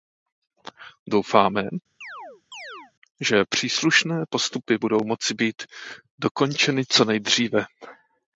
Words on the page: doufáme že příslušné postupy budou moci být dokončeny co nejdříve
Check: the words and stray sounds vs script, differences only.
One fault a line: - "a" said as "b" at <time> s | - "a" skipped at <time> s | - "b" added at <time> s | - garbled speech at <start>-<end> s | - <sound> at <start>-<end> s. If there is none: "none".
- chirp at 2.0-2.9 s